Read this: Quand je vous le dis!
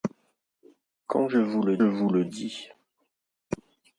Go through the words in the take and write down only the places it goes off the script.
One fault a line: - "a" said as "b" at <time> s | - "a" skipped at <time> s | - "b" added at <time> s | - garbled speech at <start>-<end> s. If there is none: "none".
- "vous le" added at 1.8 s